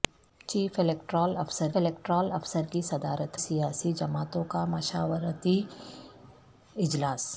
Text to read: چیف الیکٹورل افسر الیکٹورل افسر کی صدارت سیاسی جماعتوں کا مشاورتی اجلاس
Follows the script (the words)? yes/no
yes